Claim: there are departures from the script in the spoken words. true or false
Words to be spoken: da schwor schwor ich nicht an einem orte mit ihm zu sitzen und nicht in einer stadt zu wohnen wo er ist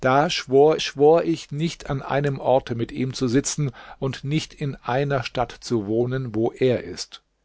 false